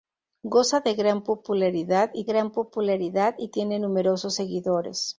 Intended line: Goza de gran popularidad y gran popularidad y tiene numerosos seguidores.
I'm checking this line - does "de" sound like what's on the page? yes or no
yes